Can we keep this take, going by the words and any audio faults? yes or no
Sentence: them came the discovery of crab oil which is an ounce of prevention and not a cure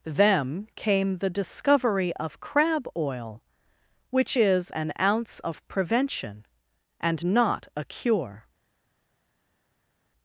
yes